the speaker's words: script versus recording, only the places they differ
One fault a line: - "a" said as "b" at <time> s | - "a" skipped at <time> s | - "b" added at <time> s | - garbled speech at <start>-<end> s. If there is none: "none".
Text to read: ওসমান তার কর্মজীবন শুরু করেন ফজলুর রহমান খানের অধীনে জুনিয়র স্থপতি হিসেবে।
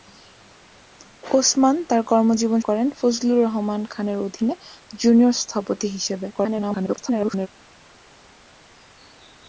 - "শুরু" skipped at 2.6 s
- garbled speech at 6.3-7.5 s